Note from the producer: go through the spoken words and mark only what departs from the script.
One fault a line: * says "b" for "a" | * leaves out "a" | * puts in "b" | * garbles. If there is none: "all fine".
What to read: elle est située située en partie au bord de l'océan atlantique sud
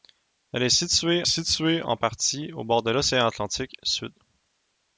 all fine